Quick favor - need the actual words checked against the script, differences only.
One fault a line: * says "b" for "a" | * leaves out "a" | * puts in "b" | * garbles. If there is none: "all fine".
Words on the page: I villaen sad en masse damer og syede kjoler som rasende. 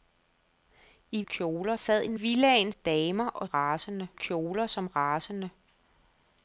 * says "kjoler" for "villaen"
* says "villaen" for "masse"
* says "rasende" for "syede"